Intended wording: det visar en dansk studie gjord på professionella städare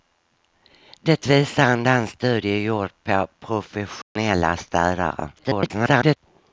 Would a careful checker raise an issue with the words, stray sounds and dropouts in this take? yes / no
yes